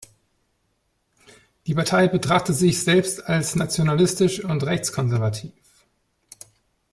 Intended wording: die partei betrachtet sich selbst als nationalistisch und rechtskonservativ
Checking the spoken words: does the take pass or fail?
pass